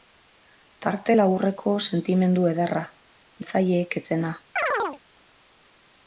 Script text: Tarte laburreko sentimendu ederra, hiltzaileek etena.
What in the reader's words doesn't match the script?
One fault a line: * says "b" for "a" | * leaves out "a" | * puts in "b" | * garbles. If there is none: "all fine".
all fine